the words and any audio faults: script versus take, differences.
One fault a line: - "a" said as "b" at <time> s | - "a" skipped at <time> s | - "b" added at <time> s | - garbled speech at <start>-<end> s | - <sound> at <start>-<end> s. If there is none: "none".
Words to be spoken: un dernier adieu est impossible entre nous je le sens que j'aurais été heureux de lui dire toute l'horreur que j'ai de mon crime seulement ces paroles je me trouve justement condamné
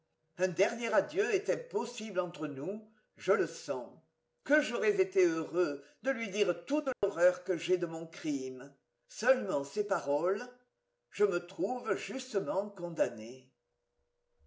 - dropout at 6.9-7.0 s